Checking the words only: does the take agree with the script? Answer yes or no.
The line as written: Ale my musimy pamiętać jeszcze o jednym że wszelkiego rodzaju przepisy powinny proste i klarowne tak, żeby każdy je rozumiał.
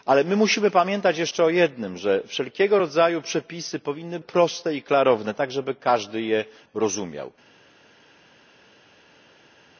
yes